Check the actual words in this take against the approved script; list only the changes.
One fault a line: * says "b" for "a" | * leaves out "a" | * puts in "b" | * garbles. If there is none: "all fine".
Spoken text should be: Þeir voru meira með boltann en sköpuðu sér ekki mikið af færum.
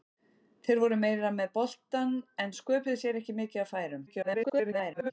* garbles